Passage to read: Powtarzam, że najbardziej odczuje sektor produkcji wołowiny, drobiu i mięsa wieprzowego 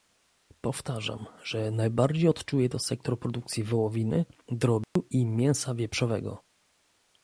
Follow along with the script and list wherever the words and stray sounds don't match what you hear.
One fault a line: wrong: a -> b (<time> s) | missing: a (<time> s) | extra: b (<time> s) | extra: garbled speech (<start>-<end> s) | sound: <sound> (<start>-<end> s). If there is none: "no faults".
extra: to (2.7 s)
sound: dropout (4.8-5.0 s)